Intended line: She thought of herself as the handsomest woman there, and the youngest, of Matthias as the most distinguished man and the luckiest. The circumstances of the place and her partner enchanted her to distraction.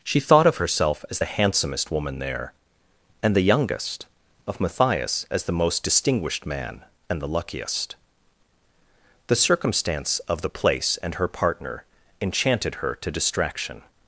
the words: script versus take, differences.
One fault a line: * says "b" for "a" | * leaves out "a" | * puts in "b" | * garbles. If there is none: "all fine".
* says "circumstance" for "circumstances"